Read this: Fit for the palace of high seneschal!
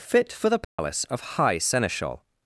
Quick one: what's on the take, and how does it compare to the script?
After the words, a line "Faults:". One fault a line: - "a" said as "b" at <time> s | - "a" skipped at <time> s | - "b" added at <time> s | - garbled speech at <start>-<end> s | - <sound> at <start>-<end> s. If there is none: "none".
Fit for the palace of high seneschal!
Faults:
- dropout at 0.6-0.8 s